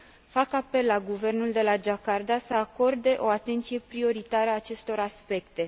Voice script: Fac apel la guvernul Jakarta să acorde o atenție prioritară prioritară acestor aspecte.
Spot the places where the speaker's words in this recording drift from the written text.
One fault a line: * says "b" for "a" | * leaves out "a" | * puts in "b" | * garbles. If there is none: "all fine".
* puts in "de la"
* leaves out "prioritară"